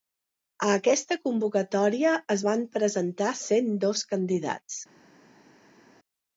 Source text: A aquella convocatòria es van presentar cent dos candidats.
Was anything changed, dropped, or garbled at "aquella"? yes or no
yes